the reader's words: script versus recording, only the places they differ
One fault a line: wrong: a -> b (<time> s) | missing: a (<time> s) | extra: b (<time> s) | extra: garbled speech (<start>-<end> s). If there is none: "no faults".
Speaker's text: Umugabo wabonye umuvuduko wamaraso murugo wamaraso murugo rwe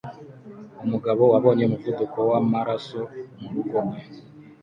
missing: wamaraso murugo (3.8 s)